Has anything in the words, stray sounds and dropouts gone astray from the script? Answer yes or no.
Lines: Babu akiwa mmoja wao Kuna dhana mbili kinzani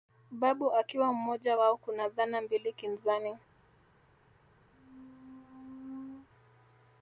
yes